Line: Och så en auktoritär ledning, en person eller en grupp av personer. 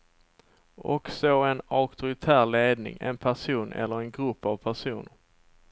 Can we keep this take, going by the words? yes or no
yes